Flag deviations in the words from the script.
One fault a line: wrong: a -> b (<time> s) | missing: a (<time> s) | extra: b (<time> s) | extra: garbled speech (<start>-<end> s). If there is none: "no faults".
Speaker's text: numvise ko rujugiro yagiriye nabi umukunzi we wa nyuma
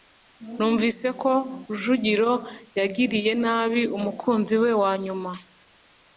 no faults